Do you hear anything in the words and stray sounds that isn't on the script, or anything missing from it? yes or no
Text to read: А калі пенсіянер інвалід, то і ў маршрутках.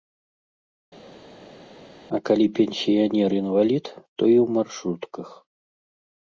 no